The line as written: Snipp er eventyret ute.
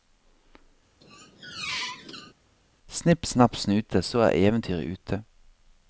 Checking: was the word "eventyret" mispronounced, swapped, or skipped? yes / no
no